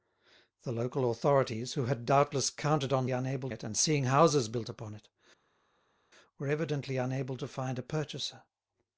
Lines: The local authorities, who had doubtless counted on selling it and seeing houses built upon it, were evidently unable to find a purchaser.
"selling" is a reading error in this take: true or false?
true